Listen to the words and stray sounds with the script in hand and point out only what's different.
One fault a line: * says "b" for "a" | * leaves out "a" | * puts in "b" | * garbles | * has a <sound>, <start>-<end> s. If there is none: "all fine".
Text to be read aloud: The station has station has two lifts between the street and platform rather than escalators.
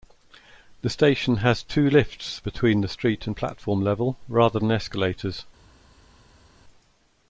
* leaves out "station has"
* puts in "level"